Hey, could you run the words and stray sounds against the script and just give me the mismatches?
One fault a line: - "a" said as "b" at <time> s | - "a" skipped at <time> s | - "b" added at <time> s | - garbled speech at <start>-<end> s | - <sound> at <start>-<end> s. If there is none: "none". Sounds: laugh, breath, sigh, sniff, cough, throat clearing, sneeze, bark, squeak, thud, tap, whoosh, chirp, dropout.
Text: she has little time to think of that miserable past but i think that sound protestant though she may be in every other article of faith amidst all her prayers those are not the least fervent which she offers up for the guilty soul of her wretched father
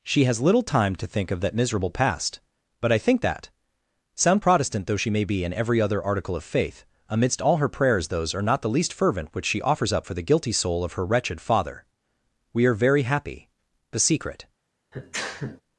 - "we are very happy the secret" added at 12.5 s
- sneeze at 14.9-15.6 s